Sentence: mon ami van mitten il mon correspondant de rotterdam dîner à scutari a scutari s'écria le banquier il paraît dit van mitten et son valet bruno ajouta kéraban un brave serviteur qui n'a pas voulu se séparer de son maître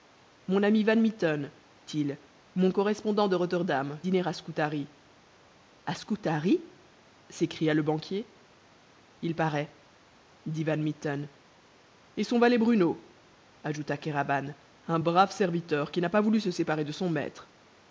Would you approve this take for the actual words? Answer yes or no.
yes